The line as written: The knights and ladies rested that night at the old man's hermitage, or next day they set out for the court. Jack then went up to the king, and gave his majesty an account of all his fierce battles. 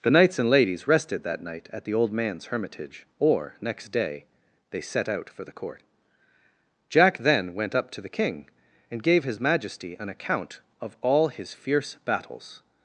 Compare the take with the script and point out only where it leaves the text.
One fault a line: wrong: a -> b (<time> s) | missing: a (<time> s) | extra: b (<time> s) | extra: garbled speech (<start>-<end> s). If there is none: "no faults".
no faults